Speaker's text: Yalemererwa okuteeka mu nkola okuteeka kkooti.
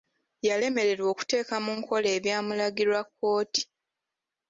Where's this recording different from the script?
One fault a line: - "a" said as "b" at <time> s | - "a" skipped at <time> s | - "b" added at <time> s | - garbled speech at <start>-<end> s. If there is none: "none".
- "okuteeka" said as "ebyamulagirwa" at 2.2 s